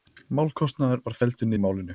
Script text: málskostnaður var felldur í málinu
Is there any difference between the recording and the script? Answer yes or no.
no